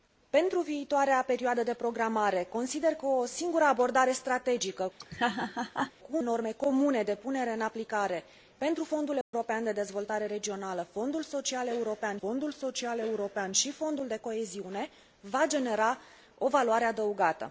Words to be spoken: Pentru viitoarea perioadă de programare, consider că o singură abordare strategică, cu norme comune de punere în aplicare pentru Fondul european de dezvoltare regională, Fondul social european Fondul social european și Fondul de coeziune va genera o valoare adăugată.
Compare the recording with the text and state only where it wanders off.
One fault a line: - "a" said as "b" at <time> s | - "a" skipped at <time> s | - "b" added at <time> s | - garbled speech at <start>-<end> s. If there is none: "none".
none